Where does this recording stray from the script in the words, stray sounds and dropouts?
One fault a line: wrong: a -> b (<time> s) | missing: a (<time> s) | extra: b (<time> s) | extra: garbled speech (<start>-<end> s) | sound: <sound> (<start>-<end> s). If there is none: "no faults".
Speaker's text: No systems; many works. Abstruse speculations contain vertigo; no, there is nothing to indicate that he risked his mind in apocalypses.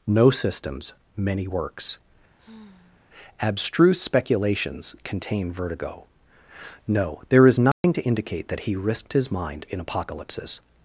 sound: sigh (2.4-3.0 s)
sound: dropout (7.7-7.8 s)